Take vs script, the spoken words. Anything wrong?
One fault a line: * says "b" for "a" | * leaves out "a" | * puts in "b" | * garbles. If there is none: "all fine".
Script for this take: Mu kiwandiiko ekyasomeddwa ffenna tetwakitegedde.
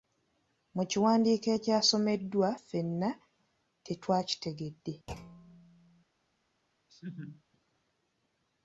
all fine